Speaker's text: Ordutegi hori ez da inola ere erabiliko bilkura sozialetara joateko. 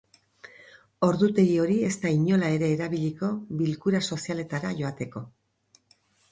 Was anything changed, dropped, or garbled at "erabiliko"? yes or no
no